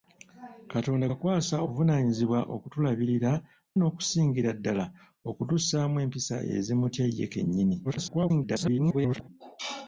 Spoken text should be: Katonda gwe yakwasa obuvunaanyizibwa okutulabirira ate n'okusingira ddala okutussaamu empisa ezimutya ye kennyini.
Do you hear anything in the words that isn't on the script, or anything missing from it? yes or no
yes